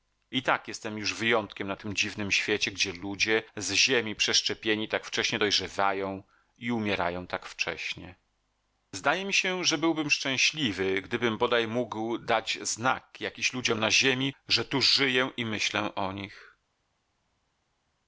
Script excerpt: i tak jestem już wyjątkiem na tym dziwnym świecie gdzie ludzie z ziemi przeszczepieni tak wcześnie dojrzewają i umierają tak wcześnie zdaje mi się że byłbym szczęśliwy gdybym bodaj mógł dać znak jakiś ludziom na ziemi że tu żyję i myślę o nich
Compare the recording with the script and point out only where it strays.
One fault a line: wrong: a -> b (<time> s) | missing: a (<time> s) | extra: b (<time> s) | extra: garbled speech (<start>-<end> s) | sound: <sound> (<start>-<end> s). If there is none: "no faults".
no faults